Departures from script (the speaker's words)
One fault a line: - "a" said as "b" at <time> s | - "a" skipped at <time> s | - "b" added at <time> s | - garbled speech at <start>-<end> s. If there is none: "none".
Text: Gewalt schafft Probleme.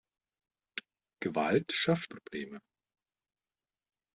none